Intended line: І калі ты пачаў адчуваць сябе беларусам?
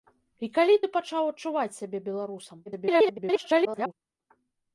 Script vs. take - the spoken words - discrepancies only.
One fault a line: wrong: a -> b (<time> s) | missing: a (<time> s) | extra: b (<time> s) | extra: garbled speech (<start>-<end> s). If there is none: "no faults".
extra: garbled speech (2.7-3.9 s)